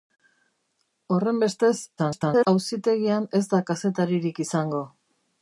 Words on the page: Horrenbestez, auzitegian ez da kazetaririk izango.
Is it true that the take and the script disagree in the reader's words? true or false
true